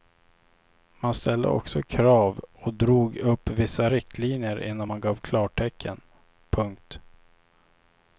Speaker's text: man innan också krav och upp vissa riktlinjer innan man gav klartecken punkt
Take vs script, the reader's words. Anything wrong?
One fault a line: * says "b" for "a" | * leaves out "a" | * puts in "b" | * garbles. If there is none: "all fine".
* says "ställde" for "innan"
* puts in "drog"